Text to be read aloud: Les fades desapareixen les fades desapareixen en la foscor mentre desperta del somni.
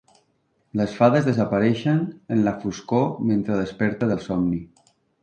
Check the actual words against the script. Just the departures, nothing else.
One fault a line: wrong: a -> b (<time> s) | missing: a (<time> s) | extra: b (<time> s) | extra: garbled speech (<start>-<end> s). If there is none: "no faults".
missing: les fades desapareixen (2.0 s)